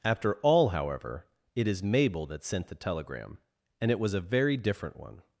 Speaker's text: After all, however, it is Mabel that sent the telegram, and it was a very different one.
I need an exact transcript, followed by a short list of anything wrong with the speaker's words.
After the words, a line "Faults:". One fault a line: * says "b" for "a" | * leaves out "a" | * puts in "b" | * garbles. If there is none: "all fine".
After all, however, it is Mabel that sent the telegram, and it was a very different one.
Faults:
all fine